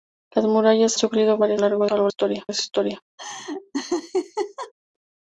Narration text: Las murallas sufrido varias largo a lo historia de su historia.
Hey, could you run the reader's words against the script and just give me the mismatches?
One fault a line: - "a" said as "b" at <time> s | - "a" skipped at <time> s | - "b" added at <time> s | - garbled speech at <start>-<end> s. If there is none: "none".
none